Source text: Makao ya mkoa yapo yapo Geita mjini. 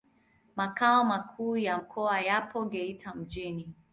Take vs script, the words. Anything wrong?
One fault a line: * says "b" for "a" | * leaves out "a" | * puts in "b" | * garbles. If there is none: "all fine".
* puts in "makuu"
* leaves out "yapo"